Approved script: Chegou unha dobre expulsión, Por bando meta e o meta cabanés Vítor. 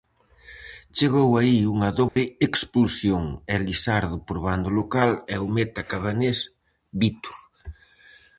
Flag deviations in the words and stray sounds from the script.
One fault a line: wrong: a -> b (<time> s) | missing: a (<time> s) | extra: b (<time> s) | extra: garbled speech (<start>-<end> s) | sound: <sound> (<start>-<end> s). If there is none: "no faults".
extra: aí (1.4 s)
sound: dropout (2.1-2.2 s)
extra: Elisardo (3.6 s)
wrong: meta -> local (4.8 s)